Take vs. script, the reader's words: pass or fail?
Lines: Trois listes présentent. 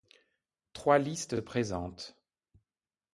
pass